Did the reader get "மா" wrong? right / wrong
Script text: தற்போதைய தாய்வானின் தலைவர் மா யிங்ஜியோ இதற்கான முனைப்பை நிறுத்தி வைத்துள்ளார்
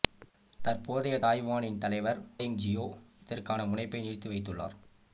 wrong